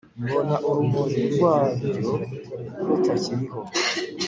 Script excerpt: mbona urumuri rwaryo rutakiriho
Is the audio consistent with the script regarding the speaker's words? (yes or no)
yes